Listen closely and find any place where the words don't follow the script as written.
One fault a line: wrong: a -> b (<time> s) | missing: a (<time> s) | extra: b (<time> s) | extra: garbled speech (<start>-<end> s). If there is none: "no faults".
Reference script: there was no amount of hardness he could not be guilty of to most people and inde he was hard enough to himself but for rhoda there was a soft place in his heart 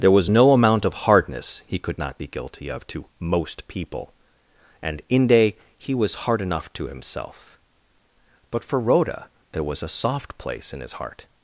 no faults